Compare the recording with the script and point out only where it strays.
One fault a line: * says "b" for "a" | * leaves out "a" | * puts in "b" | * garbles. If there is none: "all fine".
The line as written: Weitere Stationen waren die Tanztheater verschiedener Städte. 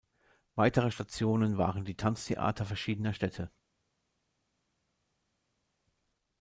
all fine